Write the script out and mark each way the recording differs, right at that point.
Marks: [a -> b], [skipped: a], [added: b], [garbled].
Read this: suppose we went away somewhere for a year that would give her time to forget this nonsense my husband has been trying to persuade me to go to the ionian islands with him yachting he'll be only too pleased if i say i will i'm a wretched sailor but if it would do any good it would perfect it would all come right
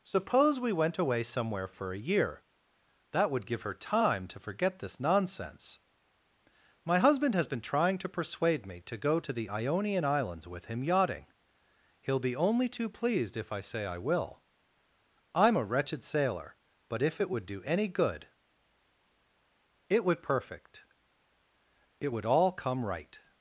suppose we went away somewhere for a year that would give her time to forget this nonsense my husband has been trying to persuade me to go to the ionian islands with him yachting he'll be only too pleased if i say i will i'm a wretched sailor but if it would do any good it would perfect it would all come right